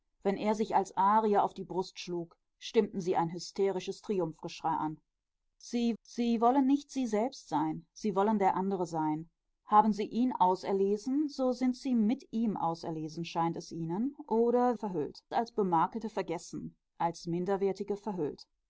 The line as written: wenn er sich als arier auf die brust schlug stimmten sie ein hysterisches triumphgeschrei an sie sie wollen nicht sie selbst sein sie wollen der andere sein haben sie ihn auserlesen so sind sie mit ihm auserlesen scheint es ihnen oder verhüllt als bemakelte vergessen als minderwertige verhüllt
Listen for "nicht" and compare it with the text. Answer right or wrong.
right